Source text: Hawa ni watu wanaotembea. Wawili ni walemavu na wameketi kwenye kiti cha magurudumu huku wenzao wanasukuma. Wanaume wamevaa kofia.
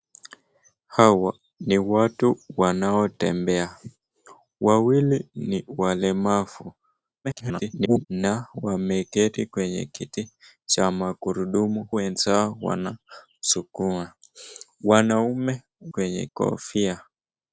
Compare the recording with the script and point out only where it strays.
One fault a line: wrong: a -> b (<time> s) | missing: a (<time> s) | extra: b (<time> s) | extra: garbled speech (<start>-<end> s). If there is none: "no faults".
extra: garbled speech (7.2-8.1 s)
missing: huku (11.9 s)
wrong: wamevaa -> kwenye (15.9 s)